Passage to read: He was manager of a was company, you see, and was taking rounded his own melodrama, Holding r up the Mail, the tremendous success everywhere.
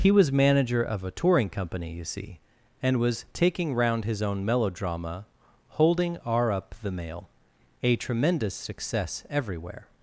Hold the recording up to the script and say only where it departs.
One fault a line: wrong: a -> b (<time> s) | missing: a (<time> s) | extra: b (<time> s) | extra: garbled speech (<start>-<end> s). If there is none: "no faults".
wrong: was -> touring (1.1 s)
wrong: rounded -> round (3.7 s)
wrong: the -> a (7.8 s)